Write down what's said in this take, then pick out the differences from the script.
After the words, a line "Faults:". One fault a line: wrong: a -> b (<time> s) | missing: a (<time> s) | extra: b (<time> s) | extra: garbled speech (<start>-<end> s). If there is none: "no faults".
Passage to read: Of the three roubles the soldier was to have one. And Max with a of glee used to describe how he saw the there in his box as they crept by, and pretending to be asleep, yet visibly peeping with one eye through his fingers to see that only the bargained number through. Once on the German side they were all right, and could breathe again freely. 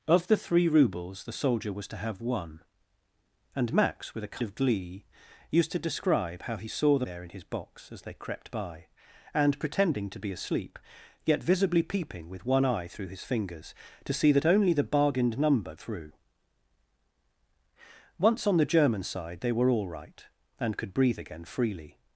Of the three roubles the soldier was to have one. And Max with a of glee used to describe how he saw the there in his box as they crept by, and pretending to be asleep, yet visibly peeping with one eye through his fingers to see that only the bargained number through. Once on the German side they were all right, and could breathe again freely.
Faults:
no faults